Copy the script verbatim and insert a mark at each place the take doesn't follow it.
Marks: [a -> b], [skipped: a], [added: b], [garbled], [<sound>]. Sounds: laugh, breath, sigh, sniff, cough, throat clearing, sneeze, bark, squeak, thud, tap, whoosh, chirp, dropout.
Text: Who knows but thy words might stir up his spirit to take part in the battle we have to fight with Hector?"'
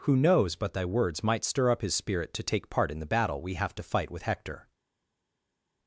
Who knows but thy words might stir up his spirit to take part in the battle we have to fight with Hector?"'